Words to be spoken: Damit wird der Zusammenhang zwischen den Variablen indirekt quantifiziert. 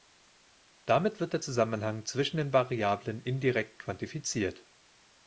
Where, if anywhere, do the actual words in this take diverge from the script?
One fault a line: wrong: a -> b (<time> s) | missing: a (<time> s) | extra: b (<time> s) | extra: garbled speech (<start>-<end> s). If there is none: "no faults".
no faults